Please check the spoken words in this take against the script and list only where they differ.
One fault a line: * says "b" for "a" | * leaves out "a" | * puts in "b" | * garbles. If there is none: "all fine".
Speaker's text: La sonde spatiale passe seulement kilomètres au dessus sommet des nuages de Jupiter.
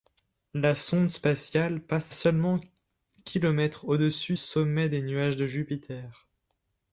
all fine